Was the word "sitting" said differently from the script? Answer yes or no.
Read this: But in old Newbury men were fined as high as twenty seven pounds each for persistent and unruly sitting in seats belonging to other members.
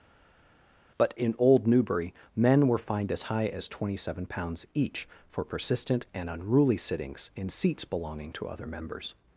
yes